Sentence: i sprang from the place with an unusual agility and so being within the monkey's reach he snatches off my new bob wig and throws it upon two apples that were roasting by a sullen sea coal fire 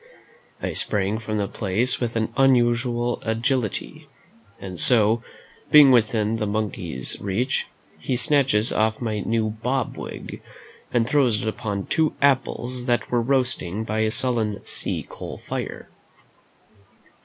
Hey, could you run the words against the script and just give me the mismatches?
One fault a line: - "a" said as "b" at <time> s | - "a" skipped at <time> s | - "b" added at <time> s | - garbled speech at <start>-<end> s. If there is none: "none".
none